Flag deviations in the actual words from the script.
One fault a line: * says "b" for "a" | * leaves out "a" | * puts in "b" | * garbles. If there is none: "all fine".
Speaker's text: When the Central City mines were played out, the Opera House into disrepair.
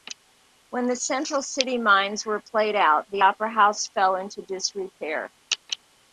* puts in "fell"